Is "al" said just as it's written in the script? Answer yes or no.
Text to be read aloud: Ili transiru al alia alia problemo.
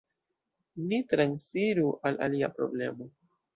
yes